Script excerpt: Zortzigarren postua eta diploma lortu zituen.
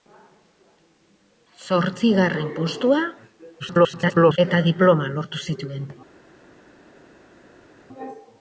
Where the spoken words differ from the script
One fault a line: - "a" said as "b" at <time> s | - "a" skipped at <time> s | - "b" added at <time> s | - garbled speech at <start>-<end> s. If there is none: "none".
- garbled speech at 3.6-4.4 s